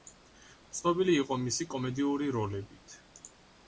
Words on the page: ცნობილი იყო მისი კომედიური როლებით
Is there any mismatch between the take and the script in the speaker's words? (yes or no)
no